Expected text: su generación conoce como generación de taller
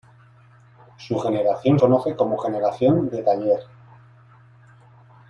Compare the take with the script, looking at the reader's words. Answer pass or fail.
pass